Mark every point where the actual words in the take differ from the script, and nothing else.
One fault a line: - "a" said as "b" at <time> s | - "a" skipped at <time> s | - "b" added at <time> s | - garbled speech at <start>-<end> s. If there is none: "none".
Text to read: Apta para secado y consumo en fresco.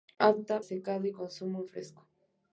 - "para" skipped at 0.6 s